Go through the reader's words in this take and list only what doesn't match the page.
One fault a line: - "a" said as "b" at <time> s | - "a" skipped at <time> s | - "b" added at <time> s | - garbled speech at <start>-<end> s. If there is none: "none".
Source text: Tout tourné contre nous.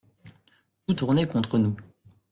none